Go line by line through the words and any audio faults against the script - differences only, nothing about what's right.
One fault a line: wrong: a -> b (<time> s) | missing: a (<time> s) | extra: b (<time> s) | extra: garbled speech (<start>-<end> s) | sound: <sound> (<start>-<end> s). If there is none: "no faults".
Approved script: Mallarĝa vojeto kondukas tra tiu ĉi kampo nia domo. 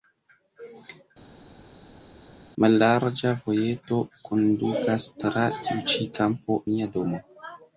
no faults